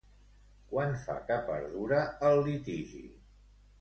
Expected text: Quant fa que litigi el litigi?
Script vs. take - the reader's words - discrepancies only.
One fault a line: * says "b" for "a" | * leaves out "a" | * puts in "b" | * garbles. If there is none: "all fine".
* says "perdura" for "litigi"